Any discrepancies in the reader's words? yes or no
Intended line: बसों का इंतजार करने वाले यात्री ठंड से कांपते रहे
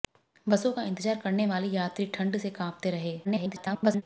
yes